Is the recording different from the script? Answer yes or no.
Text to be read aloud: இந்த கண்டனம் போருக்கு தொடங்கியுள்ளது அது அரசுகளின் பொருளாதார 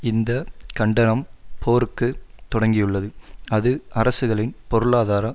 no